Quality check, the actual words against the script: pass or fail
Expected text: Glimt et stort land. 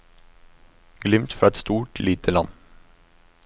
fail